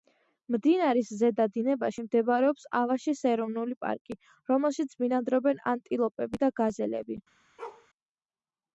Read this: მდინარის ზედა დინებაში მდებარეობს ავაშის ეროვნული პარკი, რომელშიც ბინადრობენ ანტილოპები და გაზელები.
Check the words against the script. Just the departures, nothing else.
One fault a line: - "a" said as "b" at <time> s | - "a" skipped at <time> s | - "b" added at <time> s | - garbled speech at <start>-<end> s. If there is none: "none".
none